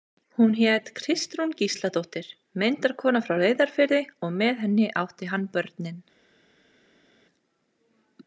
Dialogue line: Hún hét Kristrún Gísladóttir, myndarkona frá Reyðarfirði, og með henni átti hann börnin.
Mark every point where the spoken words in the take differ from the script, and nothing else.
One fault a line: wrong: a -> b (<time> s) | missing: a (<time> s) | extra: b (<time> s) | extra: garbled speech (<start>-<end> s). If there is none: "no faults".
no faults